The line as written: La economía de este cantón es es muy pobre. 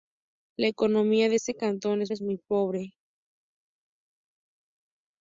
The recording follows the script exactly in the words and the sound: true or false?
true